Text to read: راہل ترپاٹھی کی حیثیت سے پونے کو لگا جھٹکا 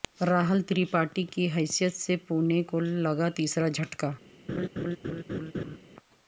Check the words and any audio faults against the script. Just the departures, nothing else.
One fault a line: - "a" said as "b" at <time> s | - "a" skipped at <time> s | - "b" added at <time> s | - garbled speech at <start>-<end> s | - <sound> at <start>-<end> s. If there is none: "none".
- "تیسرا" added at 3.3 s
- laugh at 4.5-5.8 s